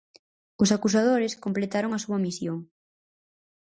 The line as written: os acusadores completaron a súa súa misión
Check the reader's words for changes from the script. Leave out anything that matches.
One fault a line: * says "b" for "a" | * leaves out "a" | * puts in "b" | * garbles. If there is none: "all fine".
* leaves out "súa"